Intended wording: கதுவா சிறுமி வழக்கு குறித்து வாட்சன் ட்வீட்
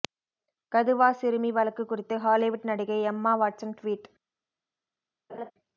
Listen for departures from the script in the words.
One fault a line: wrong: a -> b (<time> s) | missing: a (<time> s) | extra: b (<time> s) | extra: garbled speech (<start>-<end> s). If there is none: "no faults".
extra: ஹாலிவுட் நடிகை எம்மா (2.2 s)